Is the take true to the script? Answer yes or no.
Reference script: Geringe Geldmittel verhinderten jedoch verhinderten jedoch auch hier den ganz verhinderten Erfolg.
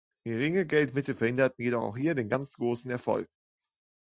no